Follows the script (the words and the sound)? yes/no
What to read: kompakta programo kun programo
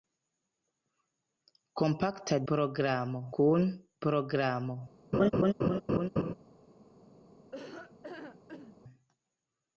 no